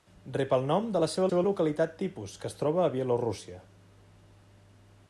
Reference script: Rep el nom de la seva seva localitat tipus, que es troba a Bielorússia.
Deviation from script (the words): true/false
false